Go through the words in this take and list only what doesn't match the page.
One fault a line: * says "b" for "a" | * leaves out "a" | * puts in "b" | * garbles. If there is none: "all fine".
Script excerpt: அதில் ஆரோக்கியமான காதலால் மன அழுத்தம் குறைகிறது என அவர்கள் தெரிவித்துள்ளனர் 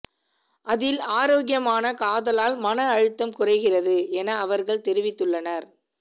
all fine